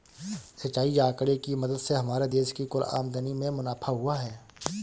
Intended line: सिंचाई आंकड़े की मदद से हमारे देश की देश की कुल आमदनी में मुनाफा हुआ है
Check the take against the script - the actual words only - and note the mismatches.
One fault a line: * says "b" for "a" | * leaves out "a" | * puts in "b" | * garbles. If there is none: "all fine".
* leaves out "देश की"